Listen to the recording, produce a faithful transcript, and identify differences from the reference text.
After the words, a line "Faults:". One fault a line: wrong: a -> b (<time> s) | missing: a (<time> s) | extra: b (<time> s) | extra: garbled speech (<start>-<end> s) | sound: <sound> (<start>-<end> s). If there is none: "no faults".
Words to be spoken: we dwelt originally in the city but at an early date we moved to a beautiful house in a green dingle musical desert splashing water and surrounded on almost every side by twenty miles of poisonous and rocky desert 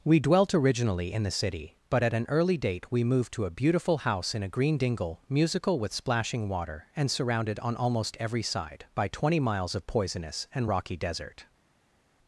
we dwelt originally in the city but at an early date we moved to a beautiful house in a green dingle musical with splashing water and surrounded on almost every side by twenty miles of poisonous and rocky desert
Faults:
wrong: desert -> with (5.8 s)